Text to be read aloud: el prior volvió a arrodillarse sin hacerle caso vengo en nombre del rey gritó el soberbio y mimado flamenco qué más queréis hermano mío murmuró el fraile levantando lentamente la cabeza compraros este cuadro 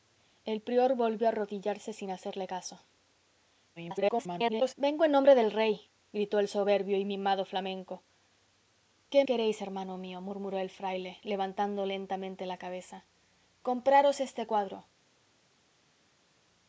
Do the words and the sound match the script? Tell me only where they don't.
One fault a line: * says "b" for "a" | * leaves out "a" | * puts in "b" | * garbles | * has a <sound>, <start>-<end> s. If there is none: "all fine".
* garbles
* leaves out "más"